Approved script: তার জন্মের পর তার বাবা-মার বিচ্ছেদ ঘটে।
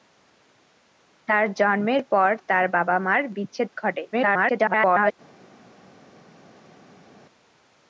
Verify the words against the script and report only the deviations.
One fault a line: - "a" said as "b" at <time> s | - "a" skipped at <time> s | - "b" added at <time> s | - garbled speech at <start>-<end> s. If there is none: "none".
- garbled speech at 4.1-5.1 s